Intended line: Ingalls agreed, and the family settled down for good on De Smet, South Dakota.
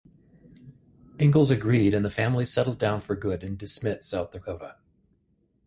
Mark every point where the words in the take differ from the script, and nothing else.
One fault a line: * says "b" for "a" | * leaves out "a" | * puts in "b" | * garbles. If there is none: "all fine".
* says "in" for "on"